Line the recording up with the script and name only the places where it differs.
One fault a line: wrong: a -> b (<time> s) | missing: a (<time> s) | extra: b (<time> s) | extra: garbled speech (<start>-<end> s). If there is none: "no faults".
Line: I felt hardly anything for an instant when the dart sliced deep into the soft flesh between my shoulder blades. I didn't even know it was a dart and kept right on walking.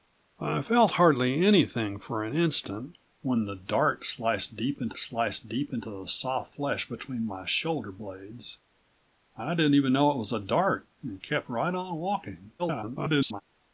extra: sliced deep into (5.0 s)
extra: garbled speech (12.6-13.4 s)